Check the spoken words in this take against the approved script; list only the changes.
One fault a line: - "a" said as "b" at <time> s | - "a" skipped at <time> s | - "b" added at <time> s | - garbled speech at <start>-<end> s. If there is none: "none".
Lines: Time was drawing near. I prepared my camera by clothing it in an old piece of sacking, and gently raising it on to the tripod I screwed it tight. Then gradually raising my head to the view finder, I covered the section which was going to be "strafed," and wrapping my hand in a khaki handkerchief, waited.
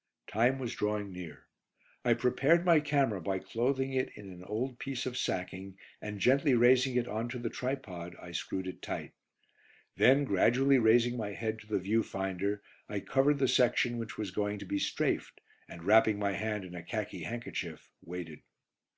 none